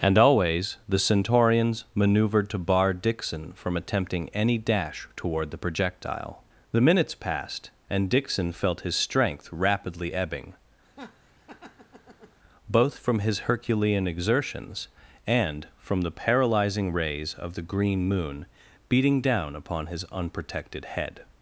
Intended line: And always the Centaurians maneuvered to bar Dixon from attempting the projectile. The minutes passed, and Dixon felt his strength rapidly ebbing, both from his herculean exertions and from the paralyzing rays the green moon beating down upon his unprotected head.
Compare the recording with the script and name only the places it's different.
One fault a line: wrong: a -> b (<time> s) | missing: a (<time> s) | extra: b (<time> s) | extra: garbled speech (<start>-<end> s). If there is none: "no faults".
extra: any dash toward (4.3 s)
extra: of (17.3 s)